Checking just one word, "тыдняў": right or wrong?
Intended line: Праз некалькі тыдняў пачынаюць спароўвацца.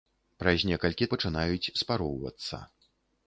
wrong